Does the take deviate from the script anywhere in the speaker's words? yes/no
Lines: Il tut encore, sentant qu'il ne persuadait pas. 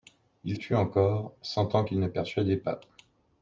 no